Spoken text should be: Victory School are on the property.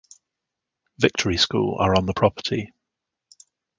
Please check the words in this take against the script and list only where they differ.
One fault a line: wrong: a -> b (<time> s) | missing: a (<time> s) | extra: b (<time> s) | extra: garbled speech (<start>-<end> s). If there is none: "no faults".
no faults